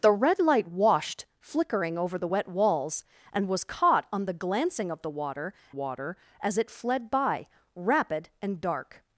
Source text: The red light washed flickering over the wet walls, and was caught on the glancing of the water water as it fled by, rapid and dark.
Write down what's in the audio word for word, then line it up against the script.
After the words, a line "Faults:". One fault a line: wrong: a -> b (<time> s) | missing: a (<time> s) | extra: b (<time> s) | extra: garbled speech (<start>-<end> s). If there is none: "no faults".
The red light washed flickering over the wet walls, and was caught on the glancing of the water water as it fled by, rapid and dark.
Faults:
no faults